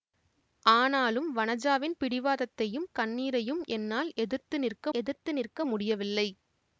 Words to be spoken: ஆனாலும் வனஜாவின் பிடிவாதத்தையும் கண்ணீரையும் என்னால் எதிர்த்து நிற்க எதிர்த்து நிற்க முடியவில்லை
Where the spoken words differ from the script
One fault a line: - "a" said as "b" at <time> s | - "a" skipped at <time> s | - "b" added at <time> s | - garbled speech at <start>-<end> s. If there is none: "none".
none